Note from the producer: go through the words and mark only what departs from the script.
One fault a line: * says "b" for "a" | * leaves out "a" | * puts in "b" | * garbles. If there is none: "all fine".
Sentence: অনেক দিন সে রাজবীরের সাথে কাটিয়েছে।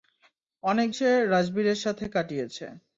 * leaves out "দিন"